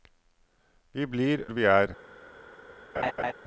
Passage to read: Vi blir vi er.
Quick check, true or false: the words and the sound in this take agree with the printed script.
false